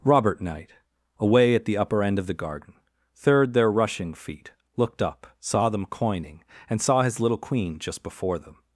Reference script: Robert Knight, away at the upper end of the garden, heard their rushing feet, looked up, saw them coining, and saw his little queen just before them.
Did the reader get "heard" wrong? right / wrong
wrong